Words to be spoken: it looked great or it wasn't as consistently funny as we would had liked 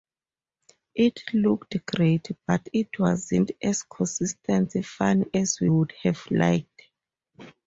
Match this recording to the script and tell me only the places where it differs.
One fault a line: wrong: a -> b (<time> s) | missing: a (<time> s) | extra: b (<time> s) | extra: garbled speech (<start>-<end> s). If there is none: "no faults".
wrong: or -> but (2.5 s)
wrong: had -> have (6.0 s)